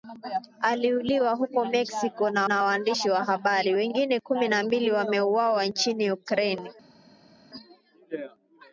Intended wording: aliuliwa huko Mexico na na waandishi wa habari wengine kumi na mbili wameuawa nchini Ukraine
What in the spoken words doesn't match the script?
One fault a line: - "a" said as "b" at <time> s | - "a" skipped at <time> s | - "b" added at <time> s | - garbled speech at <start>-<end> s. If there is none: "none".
none